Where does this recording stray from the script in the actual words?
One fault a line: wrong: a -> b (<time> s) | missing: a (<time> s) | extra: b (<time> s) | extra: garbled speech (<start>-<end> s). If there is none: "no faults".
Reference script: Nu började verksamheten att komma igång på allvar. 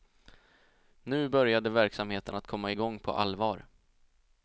no faults